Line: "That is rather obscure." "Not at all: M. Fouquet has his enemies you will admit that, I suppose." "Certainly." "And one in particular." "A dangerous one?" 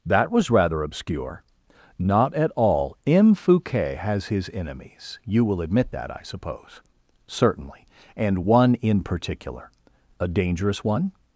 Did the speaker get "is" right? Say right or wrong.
wrong